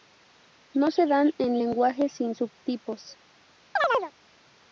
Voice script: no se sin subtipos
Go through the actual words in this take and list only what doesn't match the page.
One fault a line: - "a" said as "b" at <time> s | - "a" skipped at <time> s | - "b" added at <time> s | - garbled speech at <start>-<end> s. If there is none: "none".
- "dan en lenguajes" added at 1.1 s